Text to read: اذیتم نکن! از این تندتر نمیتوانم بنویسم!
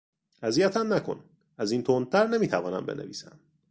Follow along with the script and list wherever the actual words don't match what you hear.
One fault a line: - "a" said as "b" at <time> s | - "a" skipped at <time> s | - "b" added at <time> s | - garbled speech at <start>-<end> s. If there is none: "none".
none